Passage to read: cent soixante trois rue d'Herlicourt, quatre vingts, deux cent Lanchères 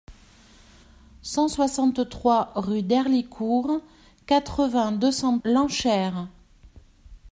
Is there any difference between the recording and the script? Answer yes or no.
no